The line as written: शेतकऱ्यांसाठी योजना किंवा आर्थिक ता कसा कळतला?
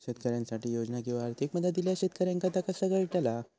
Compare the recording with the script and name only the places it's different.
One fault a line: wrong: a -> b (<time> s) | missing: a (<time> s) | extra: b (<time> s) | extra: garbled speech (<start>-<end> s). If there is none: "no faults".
extra: मदत इल्यास शेतकऱ्यांका (1.6 s)